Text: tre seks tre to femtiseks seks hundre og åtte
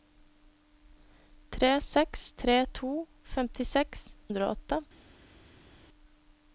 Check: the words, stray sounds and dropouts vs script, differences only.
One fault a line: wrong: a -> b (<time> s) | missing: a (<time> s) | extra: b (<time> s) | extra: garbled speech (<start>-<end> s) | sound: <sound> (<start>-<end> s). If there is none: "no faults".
missing: seks (4.1 s)